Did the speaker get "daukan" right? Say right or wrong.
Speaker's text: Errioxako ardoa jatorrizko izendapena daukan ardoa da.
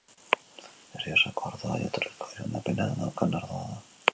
right